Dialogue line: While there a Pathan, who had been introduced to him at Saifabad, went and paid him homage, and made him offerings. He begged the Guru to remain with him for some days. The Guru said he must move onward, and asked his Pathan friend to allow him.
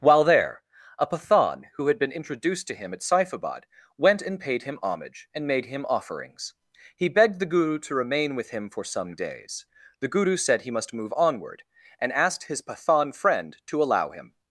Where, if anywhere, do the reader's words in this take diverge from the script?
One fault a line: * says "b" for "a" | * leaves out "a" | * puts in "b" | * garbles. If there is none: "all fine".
all fine